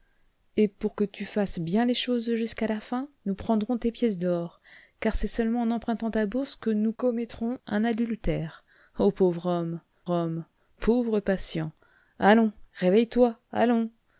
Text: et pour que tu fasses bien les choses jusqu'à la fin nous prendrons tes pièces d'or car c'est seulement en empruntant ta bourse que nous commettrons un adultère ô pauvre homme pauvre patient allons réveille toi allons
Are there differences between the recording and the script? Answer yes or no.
yes